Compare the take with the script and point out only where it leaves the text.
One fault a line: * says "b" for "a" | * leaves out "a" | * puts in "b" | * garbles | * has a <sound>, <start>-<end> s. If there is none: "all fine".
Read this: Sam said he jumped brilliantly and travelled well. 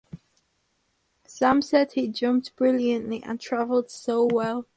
* puts in "so"